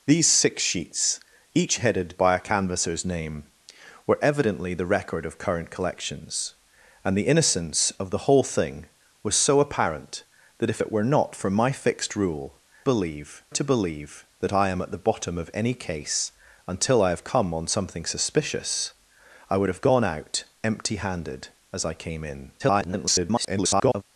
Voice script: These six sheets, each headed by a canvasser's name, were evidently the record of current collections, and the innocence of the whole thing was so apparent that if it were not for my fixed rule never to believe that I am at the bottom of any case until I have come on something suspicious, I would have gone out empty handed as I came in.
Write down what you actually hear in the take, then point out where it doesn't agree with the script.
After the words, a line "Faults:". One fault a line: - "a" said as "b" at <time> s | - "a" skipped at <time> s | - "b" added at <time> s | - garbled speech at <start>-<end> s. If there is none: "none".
These six sheets, each headed by a canvasser's name, were evidently the record of current collections, and the innocence of the whole thing was so apparent that if it were not for my fixed rule believe to believe that I am at the bottom of any case until I have come on something suspicious, I would have gone out empty handed as I came in. [garbled]
Faults:
- "never" said as "believe" at 12.8 s
- garbled speech at 22.6-24.0 s